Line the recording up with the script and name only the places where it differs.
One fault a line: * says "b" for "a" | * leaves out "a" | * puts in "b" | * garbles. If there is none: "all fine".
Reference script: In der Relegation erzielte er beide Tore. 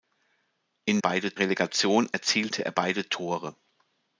* says "beide" for "der"